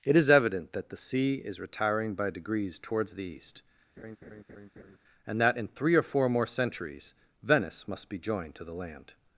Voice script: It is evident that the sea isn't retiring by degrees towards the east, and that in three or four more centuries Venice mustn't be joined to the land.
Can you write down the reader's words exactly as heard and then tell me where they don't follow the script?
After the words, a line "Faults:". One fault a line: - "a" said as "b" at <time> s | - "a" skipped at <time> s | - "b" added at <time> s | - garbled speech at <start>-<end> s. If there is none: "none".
It is evident that the sea is retiring by degrees towards the east, and that in three or four more centuries Venice must be joined to the land.
Faults:
- "isn't" said as "is" at 1.4 s
- "mustn't" said as "must" at 7.9 s